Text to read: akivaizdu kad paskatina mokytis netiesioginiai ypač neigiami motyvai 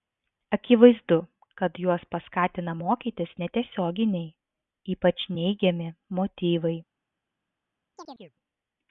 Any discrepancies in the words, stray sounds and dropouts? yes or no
yes